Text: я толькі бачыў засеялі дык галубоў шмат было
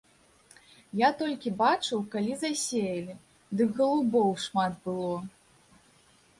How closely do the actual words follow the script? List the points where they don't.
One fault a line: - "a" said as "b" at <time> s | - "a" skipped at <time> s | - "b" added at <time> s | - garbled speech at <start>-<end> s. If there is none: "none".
- "калі" added at 2.1 s